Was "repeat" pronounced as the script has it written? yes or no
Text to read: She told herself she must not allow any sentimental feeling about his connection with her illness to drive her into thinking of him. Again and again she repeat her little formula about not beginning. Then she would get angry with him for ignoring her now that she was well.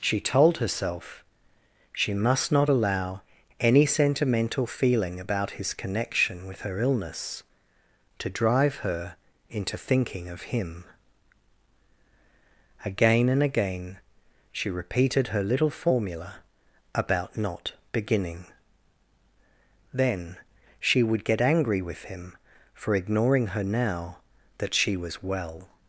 no